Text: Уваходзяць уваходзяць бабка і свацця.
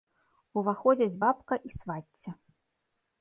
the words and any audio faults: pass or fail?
fail